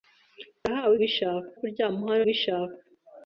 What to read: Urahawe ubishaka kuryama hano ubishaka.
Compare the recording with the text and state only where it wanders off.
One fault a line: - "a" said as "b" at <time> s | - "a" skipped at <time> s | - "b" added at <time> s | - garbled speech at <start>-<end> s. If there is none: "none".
none